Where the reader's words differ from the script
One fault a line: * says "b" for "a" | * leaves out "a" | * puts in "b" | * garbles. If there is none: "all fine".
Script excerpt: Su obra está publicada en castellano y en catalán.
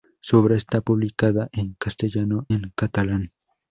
* leaves out "y"